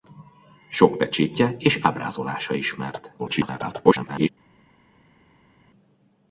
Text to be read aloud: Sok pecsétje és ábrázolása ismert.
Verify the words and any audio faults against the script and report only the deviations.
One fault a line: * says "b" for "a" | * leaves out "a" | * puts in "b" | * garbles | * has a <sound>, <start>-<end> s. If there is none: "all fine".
* garbles